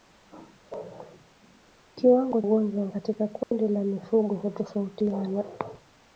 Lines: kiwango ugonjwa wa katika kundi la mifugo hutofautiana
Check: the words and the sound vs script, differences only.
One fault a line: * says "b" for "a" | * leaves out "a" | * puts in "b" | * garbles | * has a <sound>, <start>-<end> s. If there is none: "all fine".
* has a dropout, 3.4-3.5 s